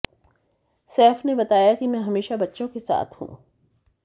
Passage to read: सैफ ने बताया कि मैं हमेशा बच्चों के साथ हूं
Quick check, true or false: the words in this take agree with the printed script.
true